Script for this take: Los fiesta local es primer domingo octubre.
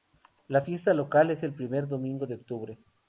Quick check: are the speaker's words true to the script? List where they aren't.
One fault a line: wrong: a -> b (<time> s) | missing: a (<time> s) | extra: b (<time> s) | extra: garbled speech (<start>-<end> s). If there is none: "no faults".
wrong: Los -> La (0.5 s)
extra: el (1.4 s)
extra: de (2.3 s)